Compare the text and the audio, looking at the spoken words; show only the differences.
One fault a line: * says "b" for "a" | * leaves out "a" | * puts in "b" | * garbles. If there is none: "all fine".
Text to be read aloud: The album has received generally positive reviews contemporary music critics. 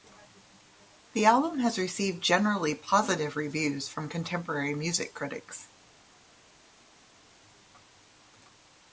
* puts in "from"